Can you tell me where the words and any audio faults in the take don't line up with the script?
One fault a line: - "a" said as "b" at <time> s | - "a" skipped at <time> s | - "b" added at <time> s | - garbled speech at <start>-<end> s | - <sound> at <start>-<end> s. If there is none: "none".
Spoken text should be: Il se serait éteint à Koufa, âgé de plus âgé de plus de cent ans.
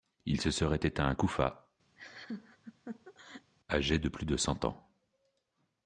- laugh at 2.0-3.5 s
- "âgé de plus" skipped at 4.3 s